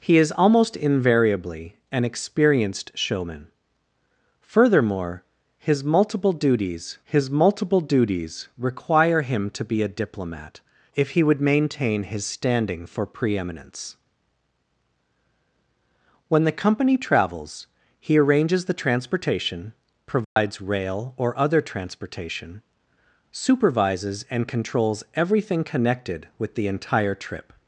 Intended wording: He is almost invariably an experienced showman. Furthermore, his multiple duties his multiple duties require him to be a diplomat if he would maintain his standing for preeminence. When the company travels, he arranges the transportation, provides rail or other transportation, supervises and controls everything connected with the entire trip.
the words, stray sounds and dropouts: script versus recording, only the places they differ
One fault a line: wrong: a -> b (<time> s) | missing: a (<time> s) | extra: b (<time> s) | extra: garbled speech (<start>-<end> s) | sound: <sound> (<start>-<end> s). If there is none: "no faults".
sound: dropout (20.2-20.4 s)